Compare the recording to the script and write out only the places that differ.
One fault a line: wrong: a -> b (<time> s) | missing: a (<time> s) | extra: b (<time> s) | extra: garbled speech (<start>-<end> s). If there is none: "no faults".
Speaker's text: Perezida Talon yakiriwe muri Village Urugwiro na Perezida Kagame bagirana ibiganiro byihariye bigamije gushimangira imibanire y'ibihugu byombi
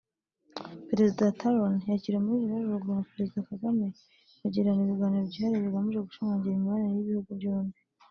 no faults